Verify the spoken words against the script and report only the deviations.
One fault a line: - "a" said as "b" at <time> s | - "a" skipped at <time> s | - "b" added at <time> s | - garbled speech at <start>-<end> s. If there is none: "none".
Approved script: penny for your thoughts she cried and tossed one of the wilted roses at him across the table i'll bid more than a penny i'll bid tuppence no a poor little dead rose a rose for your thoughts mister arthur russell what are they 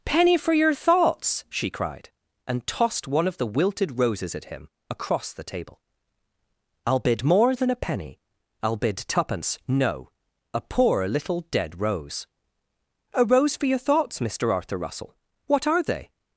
none